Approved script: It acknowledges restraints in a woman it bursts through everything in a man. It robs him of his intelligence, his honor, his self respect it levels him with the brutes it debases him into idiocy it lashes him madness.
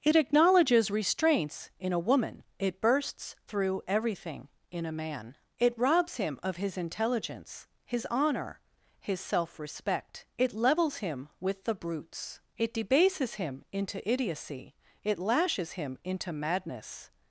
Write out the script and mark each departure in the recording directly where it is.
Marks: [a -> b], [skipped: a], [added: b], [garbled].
It acknowledges restraints in a woman it bursts through everything in a man. It robs him of his intelligence, his honor, his self respect it levels him with the brutes it debases him into idiocy it lashes him [added: into] madness.